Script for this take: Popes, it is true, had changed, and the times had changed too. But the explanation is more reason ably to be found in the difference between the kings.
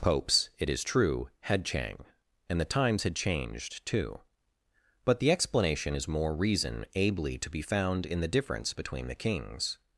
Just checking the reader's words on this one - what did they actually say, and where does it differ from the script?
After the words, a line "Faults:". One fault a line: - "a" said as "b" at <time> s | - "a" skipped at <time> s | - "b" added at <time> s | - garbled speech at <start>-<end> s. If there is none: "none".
Popes, it is true, had chang, and the times had changed too. But the explanation is more reason ably to be found in the difference between the kings.
Faults:
- "changed" said as "chang" at 1.6 s